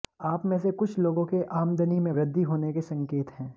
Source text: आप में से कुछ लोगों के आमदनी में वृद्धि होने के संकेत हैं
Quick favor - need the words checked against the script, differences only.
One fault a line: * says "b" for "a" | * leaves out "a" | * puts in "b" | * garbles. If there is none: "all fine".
all fine